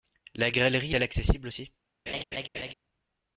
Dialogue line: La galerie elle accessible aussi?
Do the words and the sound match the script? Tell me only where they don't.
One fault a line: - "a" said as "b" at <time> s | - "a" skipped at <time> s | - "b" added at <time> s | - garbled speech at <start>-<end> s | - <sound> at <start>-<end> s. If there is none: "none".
- laugh at 2.1-2.7 s